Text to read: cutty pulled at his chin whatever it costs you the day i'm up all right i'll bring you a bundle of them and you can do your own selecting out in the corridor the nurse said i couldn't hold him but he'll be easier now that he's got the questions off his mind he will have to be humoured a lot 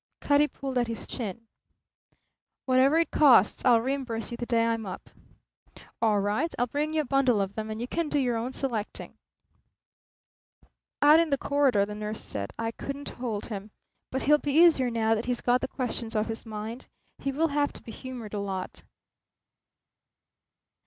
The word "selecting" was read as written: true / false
true